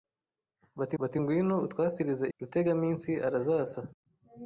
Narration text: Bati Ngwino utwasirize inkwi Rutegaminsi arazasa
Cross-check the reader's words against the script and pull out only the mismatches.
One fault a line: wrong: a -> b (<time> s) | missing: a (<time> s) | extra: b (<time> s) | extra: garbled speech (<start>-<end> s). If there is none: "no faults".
extra: bati (1.0 s)
missing: inkwi (2.3 s)